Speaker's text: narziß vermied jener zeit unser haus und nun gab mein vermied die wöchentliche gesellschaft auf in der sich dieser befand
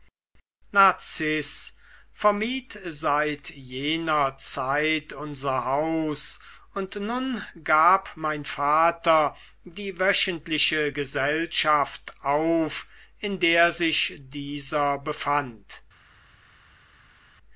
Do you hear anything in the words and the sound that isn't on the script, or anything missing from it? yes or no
yes